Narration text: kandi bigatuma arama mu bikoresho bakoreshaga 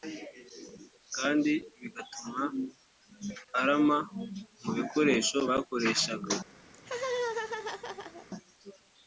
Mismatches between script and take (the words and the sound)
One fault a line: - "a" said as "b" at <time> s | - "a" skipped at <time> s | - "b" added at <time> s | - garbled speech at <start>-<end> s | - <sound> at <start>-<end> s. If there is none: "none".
- laugh at 6.7-8.3 s